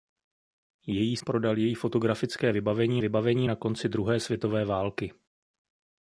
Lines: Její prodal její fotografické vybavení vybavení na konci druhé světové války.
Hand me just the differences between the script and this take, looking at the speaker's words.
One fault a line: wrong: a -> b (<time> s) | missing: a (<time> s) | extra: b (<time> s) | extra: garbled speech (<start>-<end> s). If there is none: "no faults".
no faults